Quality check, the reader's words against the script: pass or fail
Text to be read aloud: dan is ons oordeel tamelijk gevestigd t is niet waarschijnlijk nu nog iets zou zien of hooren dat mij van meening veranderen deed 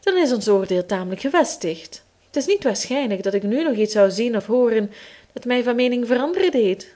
fail